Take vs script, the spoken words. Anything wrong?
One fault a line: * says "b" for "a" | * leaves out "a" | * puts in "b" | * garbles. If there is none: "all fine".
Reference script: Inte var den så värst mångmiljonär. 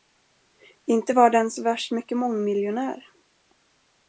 * puts in "mycket"